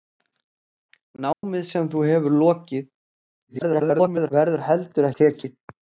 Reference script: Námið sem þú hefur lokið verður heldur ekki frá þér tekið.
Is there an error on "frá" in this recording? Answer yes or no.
yes